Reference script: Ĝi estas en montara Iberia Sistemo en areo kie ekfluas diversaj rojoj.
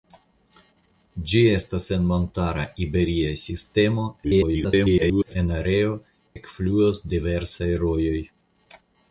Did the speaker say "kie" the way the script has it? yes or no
no